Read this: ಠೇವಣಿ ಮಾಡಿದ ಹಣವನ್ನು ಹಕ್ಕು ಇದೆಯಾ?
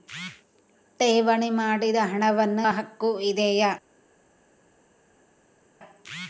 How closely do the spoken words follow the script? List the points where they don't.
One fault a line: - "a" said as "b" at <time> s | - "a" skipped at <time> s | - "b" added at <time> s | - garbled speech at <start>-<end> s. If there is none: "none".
none